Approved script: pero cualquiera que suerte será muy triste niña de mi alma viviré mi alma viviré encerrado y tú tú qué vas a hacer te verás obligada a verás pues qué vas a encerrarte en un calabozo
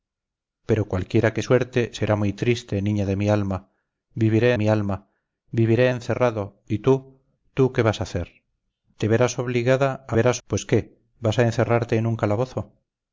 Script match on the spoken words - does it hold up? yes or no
yes